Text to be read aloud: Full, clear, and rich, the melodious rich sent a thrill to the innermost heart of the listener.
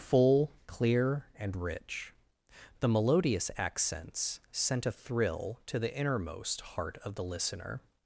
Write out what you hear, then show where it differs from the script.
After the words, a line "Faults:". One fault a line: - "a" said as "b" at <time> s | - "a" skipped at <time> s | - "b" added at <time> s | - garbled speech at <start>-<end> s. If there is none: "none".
Full, clear, and rich, the melodious accents sent a thrill to the innermost heart of the listener.
Faults:
- "rich" said as "accents" at 3.5 s